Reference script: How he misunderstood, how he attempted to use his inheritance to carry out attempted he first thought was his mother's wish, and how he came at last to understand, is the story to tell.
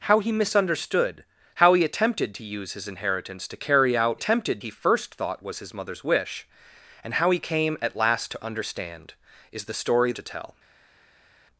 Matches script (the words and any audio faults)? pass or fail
pass